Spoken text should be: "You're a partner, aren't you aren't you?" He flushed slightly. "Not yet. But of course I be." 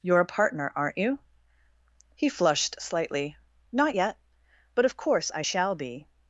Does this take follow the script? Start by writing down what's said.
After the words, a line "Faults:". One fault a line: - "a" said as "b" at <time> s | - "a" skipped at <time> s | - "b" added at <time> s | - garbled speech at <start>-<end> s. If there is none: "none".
"You're a partner, aren't you?" He flushed slightly. "Not yet. But of course I shall be."
Faults:
- "aren't you" skipped at 1.2 s
- "shall" added at 5.4 s